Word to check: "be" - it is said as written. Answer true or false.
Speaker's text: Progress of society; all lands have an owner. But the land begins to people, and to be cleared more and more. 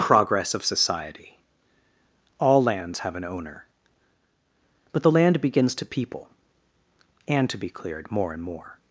true